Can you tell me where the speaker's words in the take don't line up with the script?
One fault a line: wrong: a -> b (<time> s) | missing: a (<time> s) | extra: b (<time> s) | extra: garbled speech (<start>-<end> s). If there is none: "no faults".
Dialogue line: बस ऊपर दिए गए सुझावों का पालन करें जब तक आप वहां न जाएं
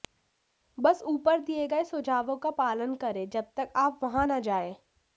no faults